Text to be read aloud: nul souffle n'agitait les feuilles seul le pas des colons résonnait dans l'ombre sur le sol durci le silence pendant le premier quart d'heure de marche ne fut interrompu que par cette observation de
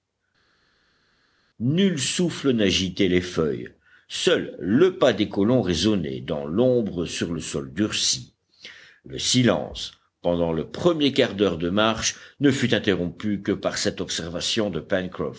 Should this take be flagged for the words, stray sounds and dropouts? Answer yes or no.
no